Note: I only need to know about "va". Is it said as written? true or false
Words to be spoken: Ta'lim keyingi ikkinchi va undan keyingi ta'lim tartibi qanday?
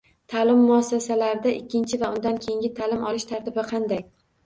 true